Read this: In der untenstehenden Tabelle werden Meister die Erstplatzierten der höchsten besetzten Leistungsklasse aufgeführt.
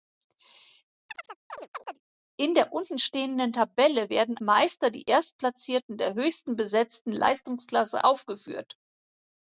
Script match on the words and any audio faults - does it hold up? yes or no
no